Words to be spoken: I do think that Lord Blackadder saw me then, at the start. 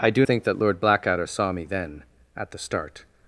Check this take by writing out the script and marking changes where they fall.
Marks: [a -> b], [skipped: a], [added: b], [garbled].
I do think that Lord Blackadder saw me then, at the start.